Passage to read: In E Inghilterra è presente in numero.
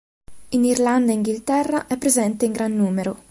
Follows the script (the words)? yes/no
no